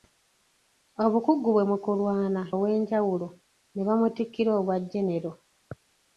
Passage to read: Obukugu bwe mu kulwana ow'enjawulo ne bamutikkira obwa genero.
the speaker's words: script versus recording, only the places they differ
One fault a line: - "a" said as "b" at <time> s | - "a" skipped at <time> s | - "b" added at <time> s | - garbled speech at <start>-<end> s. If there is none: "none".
none